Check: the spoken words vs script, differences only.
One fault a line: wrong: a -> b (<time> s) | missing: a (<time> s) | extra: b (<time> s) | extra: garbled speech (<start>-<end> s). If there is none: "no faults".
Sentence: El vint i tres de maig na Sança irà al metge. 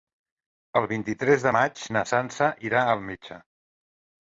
no faults